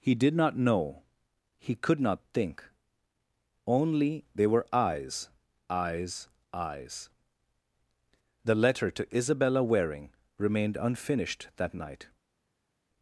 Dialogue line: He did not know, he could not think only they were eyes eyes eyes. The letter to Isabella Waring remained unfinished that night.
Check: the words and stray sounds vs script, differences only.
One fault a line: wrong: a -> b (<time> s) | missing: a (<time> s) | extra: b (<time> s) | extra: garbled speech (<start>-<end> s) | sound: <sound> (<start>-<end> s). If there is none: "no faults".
no faults